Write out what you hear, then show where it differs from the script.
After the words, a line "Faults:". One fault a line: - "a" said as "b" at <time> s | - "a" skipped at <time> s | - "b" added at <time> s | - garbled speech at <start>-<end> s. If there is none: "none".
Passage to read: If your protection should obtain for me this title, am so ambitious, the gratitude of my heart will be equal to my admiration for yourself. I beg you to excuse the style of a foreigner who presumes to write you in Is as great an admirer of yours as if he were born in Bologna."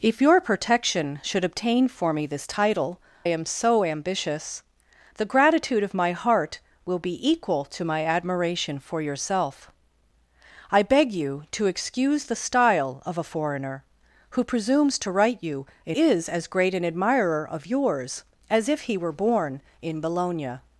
If your protection should obtain for me this title, am so ambitious, the gratitude of my heart will be equal to my admiration for yourself. I beg you to excuse the style of a foreigner who presumes to write you in Is as great an admirer of yours as if he were born in Bologna."
Faults:
none